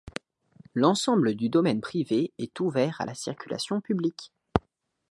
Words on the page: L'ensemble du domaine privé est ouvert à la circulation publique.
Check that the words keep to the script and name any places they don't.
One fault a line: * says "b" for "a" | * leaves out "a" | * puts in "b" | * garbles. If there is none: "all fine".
all fine